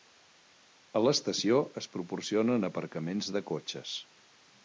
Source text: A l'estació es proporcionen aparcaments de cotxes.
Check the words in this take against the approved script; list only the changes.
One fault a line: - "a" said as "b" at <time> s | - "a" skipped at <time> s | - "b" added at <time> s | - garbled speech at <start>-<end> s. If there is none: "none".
none